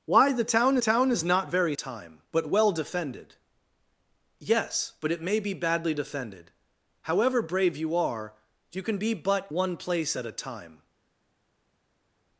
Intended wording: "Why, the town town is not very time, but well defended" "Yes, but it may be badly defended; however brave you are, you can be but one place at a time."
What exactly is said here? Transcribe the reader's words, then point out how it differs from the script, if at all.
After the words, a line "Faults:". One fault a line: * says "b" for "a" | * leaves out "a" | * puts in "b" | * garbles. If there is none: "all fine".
"Why, the town town is not very time, but well defended" "Yes, but it may be badly defended; however brave you are, you can be but one place at a time."
Faults:
all fine